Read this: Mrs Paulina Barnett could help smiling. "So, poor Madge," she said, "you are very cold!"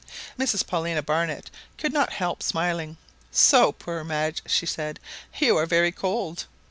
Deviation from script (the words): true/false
true